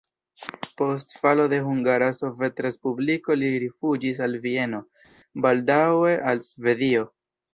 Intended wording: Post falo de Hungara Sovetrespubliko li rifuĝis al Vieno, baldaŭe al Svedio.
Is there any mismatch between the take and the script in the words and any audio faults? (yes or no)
no